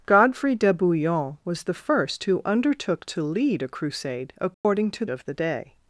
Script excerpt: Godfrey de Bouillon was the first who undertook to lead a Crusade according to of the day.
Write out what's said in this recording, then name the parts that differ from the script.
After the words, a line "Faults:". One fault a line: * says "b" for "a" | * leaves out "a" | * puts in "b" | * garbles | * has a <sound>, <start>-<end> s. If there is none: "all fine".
Godfrey de Bouillon was the first who undertook to lead a Crusade according to of the day.
Faults:
* has a dropout, 4.5-4.6 s